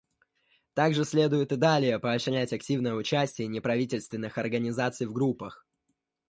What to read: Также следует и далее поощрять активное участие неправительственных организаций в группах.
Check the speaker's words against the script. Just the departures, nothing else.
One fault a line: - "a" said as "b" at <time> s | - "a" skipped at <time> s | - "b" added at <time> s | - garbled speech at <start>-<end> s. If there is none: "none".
none